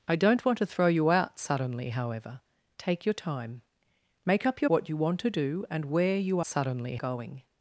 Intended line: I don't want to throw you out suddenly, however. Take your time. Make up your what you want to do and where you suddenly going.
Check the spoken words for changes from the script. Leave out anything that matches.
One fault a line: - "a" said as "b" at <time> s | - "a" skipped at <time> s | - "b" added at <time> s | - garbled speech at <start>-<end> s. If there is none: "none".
none